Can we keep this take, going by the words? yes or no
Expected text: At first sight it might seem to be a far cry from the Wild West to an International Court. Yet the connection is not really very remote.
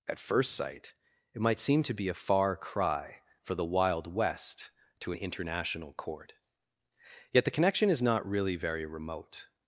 no